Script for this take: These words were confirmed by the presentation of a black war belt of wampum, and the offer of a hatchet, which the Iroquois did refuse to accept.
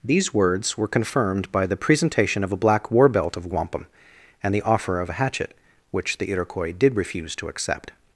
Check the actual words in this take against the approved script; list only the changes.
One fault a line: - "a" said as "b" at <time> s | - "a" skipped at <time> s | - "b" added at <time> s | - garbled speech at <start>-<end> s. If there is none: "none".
none